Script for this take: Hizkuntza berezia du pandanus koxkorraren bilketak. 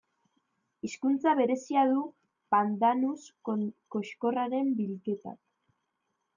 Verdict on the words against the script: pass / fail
pass